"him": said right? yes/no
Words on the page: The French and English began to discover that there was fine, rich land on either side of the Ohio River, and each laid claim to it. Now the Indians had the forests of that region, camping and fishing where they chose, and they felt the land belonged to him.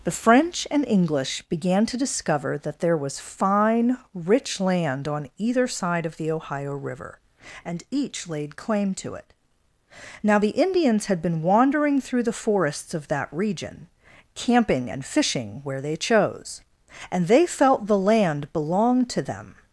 no